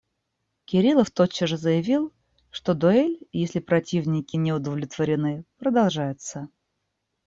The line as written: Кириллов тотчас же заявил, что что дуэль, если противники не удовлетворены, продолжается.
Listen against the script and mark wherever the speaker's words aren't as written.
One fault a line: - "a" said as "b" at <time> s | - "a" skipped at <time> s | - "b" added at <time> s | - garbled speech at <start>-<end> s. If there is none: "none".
- "что" skipped at 2.7 s